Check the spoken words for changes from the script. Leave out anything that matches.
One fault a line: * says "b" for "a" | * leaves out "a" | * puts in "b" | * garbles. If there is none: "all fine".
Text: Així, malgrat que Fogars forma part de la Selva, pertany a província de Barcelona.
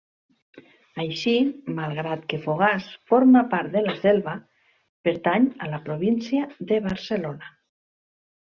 * puts in "la"